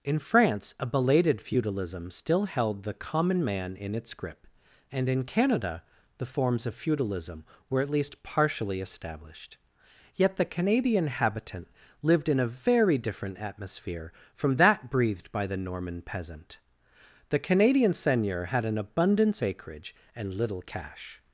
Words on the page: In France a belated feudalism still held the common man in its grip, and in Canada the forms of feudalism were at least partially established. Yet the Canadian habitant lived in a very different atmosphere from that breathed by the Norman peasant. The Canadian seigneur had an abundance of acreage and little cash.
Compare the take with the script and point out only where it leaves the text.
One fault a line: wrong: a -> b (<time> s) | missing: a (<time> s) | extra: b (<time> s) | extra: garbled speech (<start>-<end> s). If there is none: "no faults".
missing: of (19.4 s)